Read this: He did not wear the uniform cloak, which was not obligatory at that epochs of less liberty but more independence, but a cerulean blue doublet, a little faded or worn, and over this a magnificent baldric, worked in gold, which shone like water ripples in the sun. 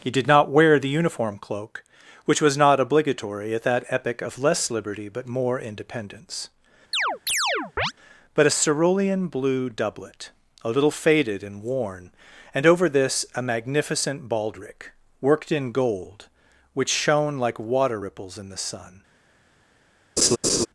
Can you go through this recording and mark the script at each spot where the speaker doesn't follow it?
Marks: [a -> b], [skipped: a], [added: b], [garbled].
He did not wear the uniform cloak, which was not obligatory at that [epochs -> epoch] of less liberty but more independence, but a cerulean blue doublet, a little faded [or -> and] worn, and over this a magnificent baldric, worked in gold, which shone like water ripples in the sun.